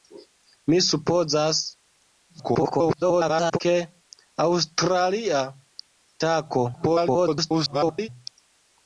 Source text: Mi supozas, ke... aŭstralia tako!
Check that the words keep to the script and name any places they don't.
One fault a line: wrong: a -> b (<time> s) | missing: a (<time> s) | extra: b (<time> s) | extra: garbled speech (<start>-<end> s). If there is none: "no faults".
extra: garbled speech (2.3-3.6 s)
extra: garbled speech (6.7-8.1 s)